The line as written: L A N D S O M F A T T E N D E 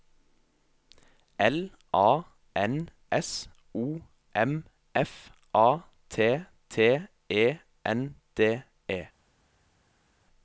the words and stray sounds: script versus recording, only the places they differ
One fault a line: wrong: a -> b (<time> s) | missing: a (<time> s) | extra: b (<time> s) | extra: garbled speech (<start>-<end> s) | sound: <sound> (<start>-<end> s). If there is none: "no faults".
missing: D (2.9 s)